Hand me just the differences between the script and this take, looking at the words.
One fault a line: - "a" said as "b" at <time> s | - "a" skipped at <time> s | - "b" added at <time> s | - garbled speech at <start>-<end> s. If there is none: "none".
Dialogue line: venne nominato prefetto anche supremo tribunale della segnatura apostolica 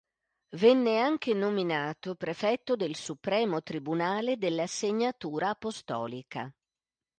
- "anche" added at 1.0 s
- "anche" said as "del" at 2.8 s